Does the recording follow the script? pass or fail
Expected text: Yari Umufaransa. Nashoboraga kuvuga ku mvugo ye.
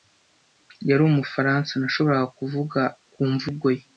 pass